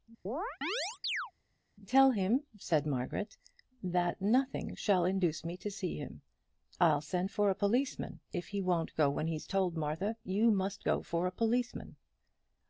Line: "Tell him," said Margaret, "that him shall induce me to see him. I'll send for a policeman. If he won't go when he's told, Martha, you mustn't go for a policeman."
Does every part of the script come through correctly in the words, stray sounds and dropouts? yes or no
no